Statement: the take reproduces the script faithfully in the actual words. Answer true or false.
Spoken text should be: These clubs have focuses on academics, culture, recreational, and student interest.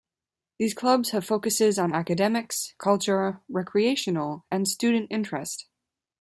true